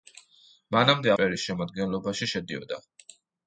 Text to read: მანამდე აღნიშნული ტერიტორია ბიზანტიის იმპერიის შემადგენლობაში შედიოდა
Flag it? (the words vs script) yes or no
yes